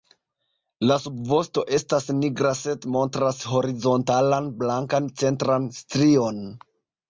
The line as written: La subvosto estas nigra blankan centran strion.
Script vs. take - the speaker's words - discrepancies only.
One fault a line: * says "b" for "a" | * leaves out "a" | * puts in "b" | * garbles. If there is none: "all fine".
* puts in "sed montras horizontalan"